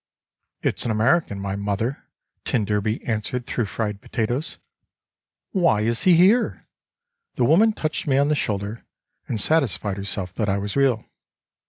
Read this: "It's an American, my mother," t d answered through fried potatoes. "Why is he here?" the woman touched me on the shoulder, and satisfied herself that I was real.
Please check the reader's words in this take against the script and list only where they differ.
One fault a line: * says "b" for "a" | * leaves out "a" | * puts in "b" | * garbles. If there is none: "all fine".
all fine